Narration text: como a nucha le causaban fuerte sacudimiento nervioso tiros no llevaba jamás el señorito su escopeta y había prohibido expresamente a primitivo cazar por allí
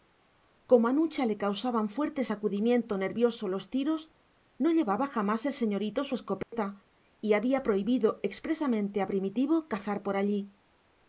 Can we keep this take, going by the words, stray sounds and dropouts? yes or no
no